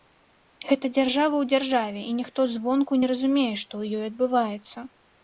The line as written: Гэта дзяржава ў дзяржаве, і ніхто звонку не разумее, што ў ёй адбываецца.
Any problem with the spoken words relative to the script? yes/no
no